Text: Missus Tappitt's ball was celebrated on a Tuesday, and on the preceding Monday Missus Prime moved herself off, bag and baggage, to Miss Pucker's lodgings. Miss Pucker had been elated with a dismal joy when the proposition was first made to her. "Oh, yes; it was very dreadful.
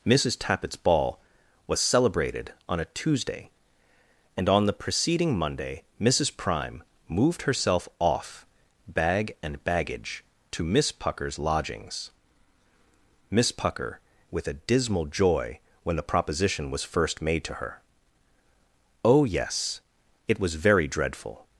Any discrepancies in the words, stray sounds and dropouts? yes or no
yes